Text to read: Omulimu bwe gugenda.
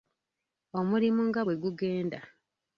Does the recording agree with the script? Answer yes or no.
no